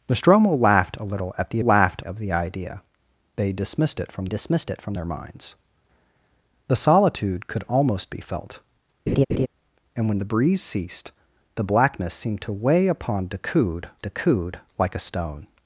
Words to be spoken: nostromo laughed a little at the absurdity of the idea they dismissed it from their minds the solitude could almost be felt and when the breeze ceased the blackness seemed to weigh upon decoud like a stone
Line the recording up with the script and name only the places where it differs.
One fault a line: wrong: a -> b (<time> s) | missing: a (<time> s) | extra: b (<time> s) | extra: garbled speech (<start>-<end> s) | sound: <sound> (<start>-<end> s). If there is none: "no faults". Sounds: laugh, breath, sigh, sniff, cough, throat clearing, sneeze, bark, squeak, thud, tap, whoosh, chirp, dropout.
wrong: absurdity -> laughed (1.6 s)
extra: dismissed it from (4.3 s)
sound: laugh (9.1-9.5 s)
extra: decoud (14.0 s)